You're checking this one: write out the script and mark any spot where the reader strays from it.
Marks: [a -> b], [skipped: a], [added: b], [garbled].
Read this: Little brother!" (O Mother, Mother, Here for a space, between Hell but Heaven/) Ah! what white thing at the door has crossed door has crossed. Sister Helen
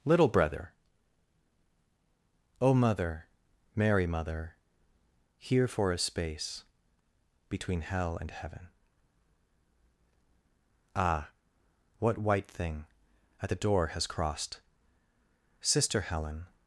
Little brother!" (O Mother, [added: Mary] Mother, Here for a space, between Hell [but -> and] Heaven/) Ah! what white thing at the door has crossed [skipped: door has crossed.] Sister Helen